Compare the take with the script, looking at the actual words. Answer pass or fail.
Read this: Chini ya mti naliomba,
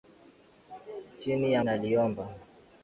fail